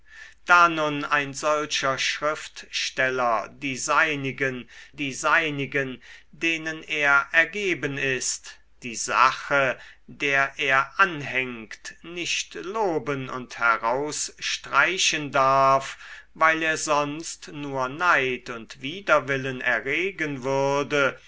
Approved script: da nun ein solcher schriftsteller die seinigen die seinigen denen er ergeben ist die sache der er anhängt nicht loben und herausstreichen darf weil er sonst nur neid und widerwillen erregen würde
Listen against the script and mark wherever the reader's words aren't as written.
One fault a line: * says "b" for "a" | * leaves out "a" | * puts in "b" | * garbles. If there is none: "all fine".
all fine